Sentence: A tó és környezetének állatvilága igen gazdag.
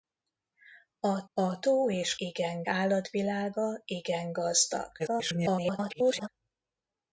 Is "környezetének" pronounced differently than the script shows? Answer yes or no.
yes